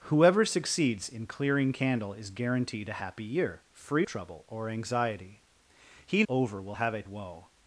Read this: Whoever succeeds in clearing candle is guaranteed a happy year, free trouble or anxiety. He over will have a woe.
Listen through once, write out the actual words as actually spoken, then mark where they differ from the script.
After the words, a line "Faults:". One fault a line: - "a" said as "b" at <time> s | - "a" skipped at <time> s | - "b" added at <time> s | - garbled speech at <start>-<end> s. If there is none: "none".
Whoever succeeds in clearing candle is guaranteed a happy year, free trouble or anxiety. He over will have a woe.
Faults:
none